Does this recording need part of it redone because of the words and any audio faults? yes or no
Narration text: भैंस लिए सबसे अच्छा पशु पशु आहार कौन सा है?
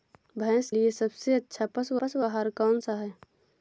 no